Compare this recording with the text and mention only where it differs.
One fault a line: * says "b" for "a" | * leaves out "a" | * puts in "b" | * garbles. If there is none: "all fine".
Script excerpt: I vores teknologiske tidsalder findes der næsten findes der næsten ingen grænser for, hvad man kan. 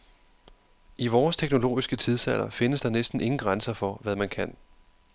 * leaves out "findes der næsten"